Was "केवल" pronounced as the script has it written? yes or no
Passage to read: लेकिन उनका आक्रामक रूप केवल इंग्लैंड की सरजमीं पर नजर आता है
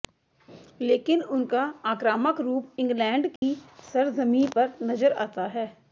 no